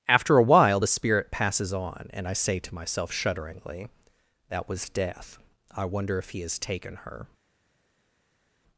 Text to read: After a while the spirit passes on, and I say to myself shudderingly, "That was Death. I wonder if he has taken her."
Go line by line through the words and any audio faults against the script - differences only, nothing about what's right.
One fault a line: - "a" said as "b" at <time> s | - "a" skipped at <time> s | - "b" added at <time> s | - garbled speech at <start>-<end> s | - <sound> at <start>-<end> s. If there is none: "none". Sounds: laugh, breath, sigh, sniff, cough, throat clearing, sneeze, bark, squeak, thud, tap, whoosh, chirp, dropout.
none